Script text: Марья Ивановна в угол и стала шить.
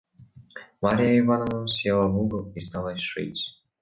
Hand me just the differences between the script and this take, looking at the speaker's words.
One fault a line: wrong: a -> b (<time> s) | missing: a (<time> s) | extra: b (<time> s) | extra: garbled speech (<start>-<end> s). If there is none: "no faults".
extra: села (1.7 s)